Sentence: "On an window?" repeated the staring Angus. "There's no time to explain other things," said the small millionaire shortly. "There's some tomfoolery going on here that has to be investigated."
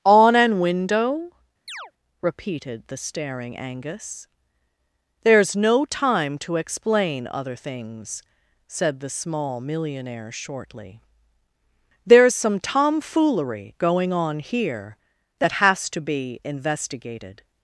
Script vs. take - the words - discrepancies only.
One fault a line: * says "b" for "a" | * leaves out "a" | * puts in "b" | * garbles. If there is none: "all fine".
all fine